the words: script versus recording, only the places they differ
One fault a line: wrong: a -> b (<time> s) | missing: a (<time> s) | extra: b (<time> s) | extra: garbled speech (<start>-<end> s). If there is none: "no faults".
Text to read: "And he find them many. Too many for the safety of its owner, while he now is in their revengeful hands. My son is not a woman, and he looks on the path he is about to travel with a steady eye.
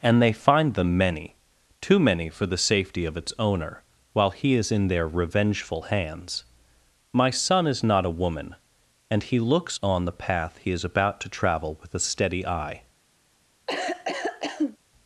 wrong: he -> they (0.2 s)
missing: now (4.5 s)